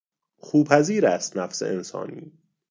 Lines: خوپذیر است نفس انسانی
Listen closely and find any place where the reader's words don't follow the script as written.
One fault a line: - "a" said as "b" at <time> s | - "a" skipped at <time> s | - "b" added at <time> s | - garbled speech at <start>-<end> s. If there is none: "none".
none